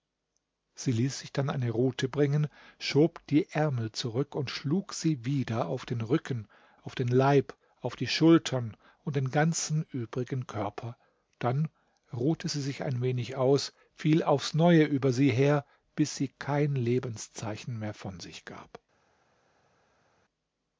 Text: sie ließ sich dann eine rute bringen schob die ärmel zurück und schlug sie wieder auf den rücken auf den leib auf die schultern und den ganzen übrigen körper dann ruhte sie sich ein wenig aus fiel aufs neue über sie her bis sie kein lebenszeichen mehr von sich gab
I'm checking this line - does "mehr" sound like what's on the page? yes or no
yes